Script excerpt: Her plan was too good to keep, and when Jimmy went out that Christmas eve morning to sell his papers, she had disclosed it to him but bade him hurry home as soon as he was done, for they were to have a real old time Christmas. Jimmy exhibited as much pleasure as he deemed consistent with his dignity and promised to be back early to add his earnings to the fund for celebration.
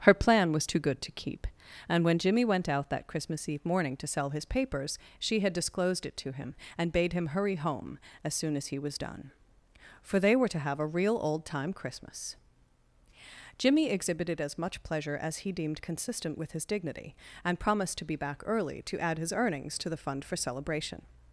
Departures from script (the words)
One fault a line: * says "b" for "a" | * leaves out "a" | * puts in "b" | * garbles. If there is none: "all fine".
* says "and" for "but"